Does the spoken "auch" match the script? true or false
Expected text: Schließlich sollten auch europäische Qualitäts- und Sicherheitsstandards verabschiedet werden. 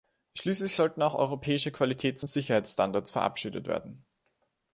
true